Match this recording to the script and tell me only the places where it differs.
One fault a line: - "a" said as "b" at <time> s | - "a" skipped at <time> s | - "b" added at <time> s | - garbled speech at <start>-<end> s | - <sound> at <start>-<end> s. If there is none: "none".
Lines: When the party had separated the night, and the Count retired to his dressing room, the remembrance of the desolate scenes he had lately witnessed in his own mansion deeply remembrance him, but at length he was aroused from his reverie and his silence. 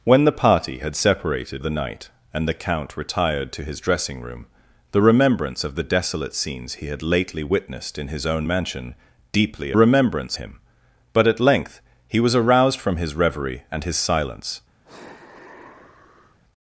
- sigh at 14.8-16.4 s